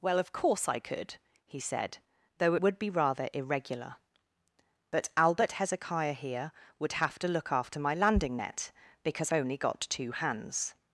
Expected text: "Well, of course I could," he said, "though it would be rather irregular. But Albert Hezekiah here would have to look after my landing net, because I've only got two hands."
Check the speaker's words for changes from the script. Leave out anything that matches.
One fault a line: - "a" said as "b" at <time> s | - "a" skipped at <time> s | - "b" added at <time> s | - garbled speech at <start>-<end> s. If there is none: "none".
- "it" skipped at 2.5 s
- "I've" skipped at 9.3 s